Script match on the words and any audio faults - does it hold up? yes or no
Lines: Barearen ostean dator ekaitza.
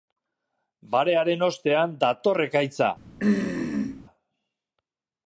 no